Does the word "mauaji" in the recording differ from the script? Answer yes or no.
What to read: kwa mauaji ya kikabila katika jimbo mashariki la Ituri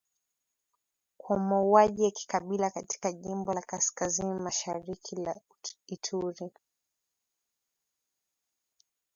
no